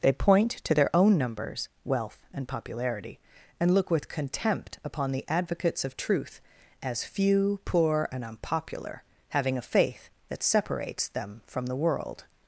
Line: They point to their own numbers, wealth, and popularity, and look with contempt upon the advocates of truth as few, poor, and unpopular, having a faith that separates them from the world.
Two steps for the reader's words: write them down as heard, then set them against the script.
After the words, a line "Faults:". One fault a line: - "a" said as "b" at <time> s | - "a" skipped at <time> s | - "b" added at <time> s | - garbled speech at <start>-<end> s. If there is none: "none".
They point to their own numbers, wealth, and popularity, and look with contempt upon the advocates of truth as few, poor, and unpopular, having a faith that separates them from the world.
Faults:
none